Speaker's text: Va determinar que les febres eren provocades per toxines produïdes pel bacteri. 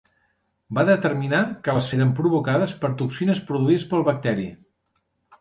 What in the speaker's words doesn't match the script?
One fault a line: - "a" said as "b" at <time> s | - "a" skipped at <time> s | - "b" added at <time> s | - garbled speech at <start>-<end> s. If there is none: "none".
- "febres" skipped at 1.9 s